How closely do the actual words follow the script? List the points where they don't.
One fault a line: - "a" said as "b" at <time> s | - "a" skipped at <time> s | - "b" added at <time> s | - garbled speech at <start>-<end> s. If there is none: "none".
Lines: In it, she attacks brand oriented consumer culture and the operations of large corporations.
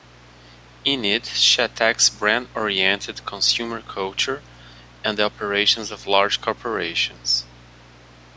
none